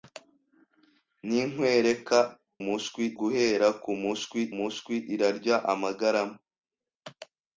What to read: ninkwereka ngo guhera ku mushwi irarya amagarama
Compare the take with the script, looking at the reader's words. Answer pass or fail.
fail